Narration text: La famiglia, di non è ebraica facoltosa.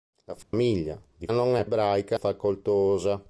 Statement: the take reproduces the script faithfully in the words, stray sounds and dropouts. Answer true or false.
false